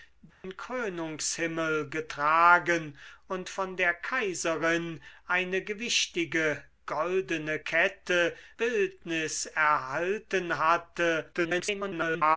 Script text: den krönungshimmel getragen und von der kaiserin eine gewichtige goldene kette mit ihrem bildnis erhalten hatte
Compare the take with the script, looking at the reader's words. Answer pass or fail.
fail